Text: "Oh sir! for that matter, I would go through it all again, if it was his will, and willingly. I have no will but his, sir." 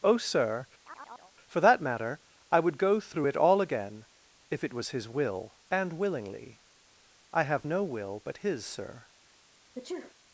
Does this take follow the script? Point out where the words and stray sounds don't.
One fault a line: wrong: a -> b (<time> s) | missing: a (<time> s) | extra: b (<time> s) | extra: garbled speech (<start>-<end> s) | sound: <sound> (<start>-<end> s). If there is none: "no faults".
sound: chirp (0.8-1.3 s)
sound: sneeze (9.8-10.1 s)